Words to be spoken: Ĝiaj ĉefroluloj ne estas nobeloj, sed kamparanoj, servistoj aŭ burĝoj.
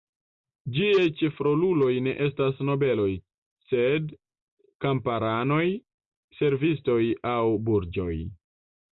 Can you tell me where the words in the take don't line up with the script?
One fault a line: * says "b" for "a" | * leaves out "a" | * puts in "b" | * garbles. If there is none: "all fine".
all fine